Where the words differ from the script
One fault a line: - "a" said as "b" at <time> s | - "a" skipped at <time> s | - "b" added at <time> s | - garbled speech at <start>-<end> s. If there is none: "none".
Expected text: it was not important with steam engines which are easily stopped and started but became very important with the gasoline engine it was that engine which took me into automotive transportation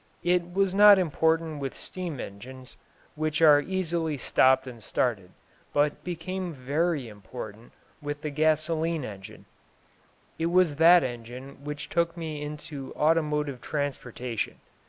none